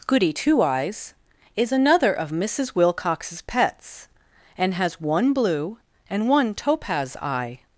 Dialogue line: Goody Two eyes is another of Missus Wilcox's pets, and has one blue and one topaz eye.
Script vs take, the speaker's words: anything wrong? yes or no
no